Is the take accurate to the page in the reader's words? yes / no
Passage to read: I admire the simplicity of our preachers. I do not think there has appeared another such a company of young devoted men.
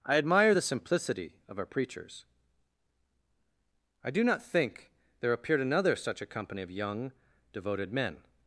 no